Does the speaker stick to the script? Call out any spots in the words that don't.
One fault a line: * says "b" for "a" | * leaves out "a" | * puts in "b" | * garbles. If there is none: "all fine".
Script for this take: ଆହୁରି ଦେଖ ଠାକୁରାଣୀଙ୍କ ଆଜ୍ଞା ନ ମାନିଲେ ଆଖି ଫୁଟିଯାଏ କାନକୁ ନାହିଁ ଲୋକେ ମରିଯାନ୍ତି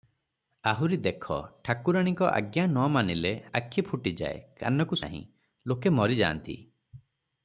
all fine